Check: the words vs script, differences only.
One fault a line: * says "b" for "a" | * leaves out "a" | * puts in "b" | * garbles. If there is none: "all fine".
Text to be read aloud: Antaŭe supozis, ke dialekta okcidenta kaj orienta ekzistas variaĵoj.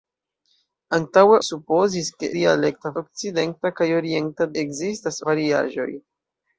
all fine